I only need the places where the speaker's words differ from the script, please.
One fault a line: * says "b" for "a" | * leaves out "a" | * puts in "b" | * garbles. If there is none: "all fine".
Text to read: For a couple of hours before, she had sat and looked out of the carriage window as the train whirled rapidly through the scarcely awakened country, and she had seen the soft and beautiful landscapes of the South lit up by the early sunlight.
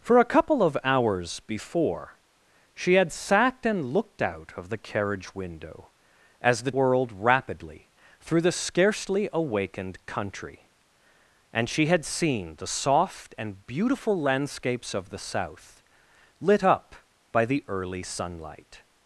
* leaves out "train"